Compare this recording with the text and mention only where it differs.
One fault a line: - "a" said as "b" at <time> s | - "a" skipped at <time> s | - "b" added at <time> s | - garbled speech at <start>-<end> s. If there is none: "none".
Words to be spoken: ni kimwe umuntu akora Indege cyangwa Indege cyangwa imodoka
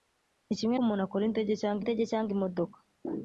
none